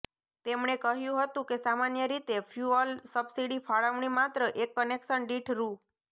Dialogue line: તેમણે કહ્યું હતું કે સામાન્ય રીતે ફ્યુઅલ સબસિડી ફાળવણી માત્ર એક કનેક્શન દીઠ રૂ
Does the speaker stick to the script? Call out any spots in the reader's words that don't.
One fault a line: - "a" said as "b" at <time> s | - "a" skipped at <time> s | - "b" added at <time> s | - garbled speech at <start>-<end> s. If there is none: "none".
none